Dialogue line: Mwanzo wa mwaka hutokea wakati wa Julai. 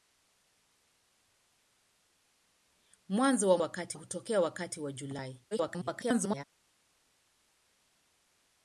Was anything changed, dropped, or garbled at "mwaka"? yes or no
yes